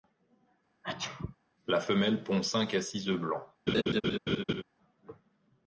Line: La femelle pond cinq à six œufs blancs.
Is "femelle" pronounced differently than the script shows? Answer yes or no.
no